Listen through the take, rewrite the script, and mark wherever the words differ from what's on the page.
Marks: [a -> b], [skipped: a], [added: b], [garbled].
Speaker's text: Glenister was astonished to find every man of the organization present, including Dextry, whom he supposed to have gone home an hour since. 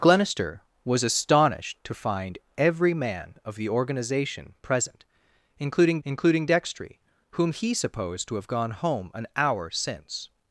Glenister was astonished to find every man of the organization present, including [added: including] Dextry, whom he supposed to have gone home an hour since.